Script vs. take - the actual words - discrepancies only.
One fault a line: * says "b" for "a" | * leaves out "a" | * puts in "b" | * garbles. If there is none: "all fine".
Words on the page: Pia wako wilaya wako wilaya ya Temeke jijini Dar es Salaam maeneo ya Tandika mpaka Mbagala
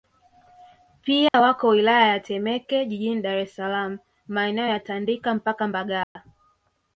* leaves out "wako wilaya"